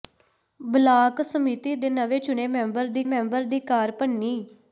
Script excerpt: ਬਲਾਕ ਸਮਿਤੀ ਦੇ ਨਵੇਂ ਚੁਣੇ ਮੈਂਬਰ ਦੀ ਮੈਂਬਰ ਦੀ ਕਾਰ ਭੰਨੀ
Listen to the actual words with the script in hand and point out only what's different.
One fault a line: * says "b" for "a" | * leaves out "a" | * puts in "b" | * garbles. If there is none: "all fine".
all fine